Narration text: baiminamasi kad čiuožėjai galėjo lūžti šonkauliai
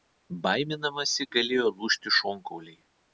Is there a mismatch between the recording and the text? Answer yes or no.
yes